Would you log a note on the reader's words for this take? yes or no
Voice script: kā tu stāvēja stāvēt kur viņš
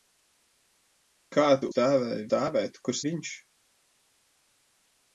no